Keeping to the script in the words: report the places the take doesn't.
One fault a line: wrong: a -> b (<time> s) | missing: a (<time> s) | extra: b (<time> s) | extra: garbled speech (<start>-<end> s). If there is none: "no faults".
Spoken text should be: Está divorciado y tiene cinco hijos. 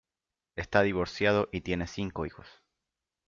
no faults